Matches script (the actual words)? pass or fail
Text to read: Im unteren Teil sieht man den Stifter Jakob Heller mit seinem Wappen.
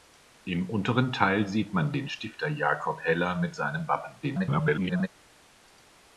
fail